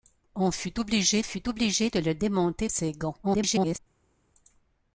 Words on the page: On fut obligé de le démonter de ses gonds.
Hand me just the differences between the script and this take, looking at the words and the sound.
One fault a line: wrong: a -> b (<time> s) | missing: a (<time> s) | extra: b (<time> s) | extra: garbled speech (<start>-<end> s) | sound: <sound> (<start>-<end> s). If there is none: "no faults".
extra: fut obligé (1.2 s)
missing: de (2.7 s)
extra: garbled speech (3.2-3.8 s)